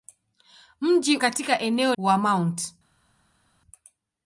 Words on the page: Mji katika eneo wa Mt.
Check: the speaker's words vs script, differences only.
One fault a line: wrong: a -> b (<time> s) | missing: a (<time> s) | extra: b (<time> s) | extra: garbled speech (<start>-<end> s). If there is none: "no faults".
no faults